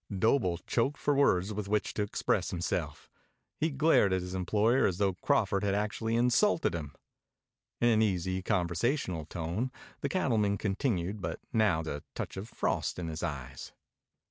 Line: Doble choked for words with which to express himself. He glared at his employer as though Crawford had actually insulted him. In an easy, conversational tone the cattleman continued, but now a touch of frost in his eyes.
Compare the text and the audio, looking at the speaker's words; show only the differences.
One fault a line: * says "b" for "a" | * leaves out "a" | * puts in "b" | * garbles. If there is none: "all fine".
all fine